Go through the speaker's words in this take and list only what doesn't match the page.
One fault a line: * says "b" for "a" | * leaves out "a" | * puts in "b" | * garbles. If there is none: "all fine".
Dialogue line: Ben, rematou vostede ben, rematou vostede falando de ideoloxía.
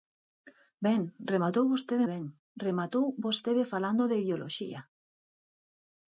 all fine